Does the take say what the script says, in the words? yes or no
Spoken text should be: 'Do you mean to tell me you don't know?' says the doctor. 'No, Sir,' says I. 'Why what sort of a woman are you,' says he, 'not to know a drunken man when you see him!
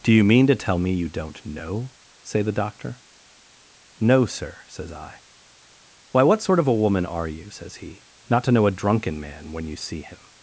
no